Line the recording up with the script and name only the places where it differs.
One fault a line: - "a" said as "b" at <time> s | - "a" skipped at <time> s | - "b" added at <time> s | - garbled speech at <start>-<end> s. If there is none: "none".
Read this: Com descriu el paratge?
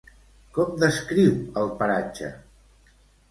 none